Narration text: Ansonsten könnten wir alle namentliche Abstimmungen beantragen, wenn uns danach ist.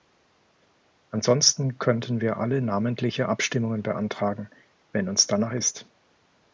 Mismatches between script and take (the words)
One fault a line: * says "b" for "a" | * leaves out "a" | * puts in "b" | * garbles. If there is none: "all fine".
all fine